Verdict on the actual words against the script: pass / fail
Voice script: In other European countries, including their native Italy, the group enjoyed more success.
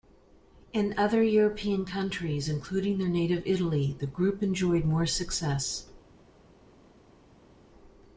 pass